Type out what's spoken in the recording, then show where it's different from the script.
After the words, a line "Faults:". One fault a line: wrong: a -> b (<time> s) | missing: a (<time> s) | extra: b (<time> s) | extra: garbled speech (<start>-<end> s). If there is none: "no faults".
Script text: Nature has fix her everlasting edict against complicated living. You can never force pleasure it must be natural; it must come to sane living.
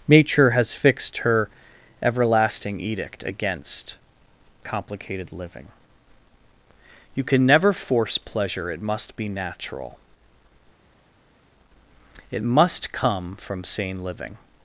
Nature has fixed her everlasting edict against complicated living. You can never force pleasure it must be natural; it must come from sane living.
Faults:
wrong: fix -> fixed (0.7 s)
wrong: to -> from (13.4 s)